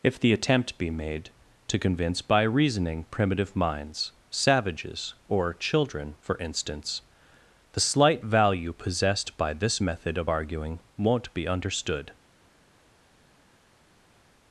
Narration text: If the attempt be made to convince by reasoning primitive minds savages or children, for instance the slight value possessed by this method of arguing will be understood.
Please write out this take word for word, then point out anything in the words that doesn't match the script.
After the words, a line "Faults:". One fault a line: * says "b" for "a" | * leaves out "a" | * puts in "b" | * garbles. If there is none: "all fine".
If the attempt be made to convince by reasoning primitive minds savages or children, for instance the slight value possessed by this method of arguing won't be understood.
Faults:
* says "won't" for "will"